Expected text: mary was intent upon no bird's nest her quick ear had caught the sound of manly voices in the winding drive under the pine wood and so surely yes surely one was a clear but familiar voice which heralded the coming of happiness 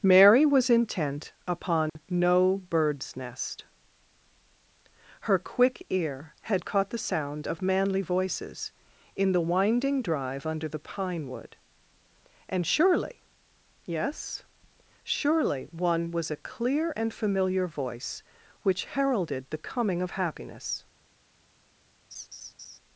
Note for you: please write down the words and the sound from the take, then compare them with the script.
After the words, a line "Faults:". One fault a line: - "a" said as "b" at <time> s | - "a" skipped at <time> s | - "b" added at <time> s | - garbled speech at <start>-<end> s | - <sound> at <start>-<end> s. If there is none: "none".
mary was intent upon no bird's nest her quick ear had caught the sound of manly voices in the winding drive under the pine wood and surely yes surely one was a clear and familiar voice which heralded the coming of happiness
Faults:
- dropout at 1.9-2.0 s
- "so" skipped at 12.6 s
- "but" said as "and" at 16.9 s
- laugh at 22.1-22.8 s